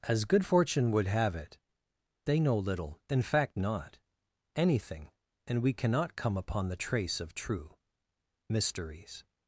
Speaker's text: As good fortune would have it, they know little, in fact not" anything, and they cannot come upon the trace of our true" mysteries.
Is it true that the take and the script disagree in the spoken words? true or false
true